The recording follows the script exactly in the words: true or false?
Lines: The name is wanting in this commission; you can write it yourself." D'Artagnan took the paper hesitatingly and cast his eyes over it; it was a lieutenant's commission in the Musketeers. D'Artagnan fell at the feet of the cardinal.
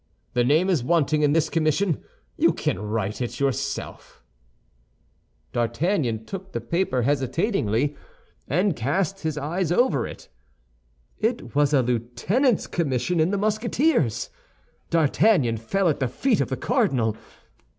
true